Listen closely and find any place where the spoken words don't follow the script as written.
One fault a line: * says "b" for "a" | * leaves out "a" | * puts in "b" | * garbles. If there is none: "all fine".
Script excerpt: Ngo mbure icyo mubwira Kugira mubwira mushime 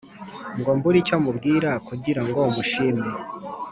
* says "ngo" for "mubwira"